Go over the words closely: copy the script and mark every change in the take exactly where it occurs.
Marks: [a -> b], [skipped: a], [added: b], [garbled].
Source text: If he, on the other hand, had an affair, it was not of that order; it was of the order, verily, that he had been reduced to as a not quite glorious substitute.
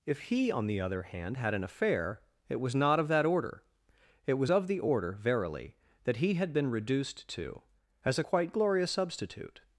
If he, on the other hand, had an affair, it was not of that order; it was of the order, verily, that he had been reduced to as a [skipped: not] quite glorious substitute.